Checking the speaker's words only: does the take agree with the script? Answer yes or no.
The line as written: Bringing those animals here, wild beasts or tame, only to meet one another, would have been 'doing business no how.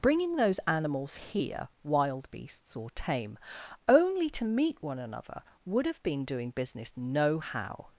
yes